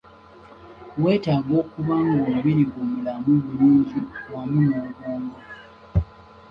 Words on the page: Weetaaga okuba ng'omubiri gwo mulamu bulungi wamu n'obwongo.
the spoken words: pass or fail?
pass